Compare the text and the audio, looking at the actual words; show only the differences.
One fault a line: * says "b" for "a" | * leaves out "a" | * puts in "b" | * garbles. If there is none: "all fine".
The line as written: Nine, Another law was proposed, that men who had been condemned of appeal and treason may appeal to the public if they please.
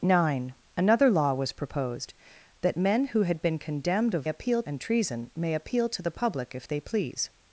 all fine